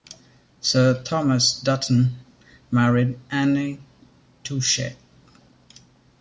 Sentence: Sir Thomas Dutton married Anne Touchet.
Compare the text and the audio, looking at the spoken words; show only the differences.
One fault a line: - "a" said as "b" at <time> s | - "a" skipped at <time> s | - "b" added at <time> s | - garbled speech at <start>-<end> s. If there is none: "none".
none